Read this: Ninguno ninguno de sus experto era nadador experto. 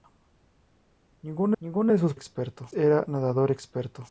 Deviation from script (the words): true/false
false